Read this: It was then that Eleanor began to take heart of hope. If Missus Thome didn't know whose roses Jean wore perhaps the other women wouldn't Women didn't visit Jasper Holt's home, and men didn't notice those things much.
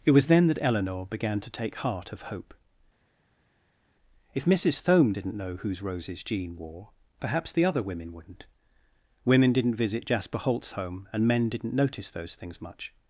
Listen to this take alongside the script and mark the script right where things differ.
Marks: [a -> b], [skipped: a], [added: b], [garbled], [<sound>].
It was then that Eleanor began to take heart of hope. If Missus Thome didn't know whose roses Jean wore perhaps the other women wouldn't Women didn't visit Jasper Holt's home, and men didn't notice those things much.